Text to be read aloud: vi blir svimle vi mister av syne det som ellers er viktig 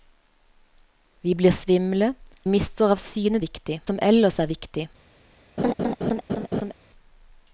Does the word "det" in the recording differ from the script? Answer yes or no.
yes